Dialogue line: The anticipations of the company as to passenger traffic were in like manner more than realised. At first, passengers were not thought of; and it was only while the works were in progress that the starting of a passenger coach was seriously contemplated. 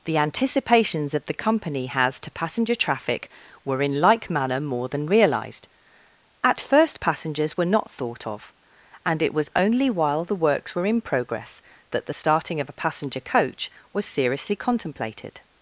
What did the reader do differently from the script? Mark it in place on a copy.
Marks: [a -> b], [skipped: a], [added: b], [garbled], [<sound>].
The anticipations of the company [as -> has] to passenger traffic were in like manner more than realised. At first, passengers were not thought of; and it was only while the works were in progress that the starting of a passenger coach was seriously contemplated.